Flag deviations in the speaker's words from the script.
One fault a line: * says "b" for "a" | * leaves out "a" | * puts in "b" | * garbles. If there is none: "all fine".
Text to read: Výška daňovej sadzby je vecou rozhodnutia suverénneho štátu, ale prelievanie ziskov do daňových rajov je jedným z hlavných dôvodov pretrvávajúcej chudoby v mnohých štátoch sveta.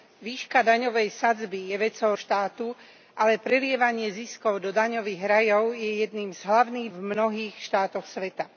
* leaves out "rozhodnutia suverénneho"
* leaves out "dôvodov pretrvávajúcej chudoby"